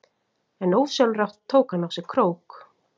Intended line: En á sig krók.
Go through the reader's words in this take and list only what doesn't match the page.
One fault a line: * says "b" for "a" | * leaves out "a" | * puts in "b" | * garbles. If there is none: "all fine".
* puts in "ósjálfrátt tók hann"